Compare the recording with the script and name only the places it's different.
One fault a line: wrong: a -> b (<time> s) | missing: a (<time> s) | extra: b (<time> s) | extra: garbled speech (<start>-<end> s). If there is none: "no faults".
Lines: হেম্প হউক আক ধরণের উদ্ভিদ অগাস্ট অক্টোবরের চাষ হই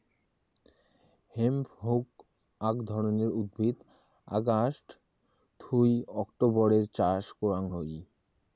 extra: থুই (5.6 s)
extra: করাং (7.4 s)